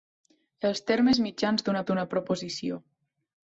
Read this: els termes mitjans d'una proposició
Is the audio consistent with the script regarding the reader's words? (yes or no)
no